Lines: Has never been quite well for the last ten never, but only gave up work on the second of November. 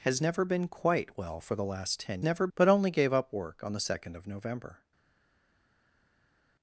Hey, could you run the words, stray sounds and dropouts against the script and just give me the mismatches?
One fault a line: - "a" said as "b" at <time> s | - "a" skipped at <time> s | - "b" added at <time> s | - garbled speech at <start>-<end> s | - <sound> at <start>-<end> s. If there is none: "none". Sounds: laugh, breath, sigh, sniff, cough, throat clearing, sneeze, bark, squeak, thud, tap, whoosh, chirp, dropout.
none